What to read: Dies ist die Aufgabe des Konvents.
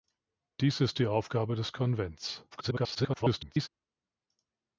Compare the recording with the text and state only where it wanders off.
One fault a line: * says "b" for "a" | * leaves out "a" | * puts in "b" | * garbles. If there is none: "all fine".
* garbles